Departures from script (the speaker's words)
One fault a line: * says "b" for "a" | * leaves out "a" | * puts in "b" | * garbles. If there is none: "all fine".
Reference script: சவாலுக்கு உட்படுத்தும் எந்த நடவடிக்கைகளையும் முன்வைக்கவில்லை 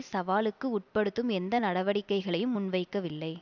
all fine